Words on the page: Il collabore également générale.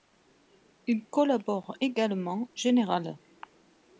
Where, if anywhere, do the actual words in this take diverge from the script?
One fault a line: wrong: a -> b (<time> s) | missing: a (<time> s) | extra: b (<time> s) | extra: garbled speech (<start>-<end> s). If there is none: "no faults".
no faults